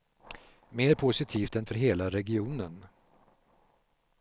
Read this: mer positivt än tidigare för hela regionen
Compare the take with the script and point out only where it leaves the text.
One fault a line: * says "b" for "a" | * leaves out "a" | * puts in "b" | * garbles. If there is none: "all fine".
* leaves out "tidigare"